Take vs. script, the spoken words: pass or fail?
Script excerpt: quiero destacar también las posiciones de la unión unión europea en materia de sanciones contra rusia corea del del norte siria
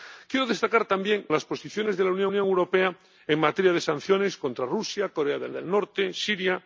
pass